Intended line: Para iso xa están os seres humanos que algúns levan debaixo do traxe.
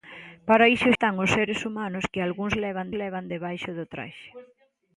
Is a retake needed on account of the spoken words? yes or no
yes